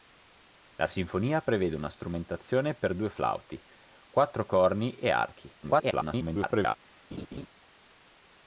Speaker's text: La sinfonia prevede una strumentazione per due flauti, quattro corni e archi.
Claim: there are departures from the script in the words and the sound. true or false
true